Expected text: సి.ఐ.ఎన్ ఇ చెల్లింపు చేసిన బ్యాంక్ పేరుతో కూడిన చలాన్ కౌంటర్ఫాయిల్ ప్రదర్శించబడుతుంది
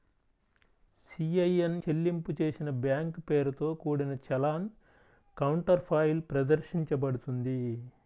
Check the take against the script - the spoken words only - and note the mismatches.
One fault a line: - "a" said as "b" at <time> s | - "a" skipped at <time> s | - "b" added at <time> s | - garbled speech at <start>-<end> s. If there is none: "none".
- "ఇ" skipped at 1.8 s